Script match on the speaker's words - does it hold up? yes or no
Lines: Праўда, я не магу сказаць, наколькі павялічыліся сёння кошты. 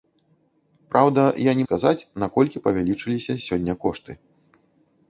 no